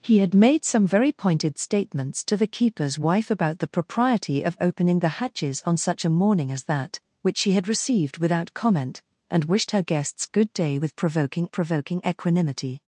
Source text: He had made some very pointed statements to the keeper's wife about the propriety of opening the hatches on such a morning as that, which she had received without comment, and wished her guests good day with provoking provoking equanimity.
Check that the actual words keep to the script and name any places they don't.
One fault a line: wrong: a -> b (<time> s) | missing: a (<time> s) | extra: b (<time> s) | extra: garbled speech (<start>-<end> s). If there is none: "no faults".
no faults